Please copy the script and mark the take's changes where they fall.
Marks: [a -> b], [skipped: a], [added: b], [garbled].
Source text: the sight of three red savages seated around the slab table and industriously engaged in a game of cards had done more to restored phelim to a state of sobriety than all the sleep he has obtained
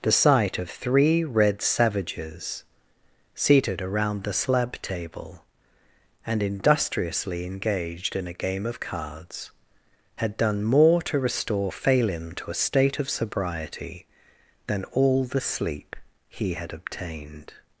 the sight of three red savages seated around the slab table and industriously engaged in a game of cards had done more to [restored -> restore] phelim to a state of sobriety than all the sleep he [has -> had] obtained